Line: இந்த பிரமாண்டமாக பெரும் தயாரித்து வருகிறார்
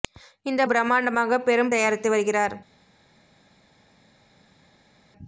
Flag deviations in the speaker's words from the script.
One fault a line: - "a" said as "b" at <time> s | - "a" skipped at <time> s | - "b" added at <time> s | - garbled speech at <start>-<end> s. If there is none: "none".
none